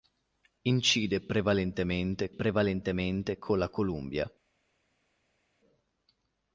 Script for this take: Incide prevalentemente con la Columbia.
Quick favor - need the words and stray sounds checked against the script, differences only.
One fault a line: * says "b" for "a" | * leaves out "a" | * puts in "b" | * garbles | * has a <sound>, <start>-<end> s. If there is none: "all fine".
* puts in "prevalentemente"